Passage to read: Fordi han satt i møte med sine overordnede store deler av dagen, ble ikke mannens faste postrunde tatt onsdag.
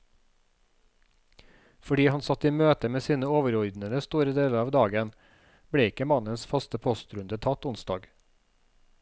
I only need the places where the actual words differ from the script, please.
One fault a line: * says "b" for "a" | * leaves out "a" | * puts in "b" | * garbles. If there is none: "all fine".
all fine